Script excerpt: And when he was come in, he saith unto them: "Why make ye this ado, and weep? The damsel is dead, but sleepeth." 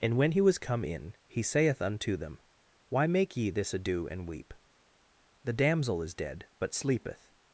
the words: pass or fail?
pass